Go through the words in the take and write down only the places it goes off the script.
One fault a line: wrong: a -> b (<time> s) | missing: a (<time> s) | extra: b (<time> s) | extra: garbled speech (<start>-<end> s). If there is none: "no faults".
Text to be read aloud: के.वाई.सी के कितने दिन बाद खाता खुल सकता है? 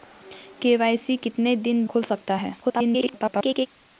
missing: के (1.2 s)
missing: बाद खाता (1.8 s)
extra: garbled speech (2.6-3.7 s)